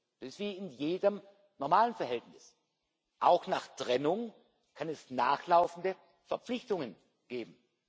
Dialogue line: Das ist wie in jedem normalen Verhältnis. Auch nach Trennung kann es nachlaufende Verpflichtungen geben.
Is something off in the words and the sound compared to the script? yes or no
no